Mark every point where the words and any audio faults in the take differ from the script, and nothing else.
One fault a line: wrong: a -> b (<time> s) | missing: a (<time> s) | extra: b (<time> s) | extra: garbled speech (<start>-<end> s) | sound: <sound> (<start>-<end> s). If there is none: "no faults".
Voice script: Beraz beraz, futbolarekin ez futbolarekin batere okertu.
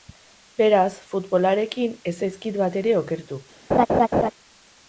missing: beraz (0.9 s)
wrong: futbolarekin -> zaizkit (2.2 s)
sound: laugh (3.7-4.3 s)